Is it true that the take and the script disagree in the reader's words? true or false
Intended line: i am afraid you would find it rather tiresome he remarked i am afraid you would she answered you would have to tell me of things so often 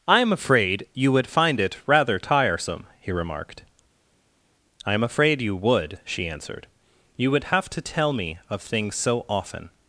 false